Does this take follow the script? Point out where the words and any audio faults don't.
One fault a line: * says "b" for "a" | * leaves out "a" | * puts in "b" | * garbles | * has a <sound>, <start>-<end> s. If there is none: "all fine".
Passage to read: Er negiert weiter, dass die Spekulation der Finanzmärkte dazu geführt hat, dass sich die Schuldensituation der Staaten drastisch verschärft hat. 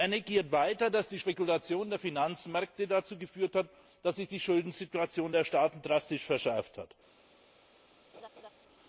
* has a laugh, 8.1-8.5 s